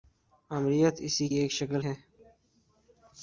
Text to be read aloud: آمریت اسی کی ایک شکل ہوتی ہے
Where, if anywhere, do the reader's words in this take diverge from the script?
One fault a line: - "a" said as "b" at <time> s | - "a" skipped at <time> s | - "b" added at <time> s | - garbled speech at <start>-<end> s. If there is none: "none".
- "کی" skipped at 1.3 s
- "ہوتی" skipped at 1.8 s